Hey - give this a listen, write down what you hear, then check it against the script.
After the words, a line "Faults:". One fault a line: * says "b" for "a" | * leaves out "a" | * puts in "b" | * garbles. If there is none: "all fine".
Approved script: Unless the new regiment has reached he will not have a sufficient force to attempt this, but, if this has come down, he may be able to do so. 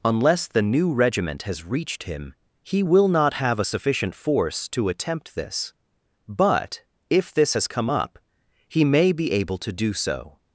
Unless the new regiment has reached him he will not have a sufficient force to attempt this, but, if this has come up, he may be able to do so.
Faults:
* puts in "him"
* says "up" for "down"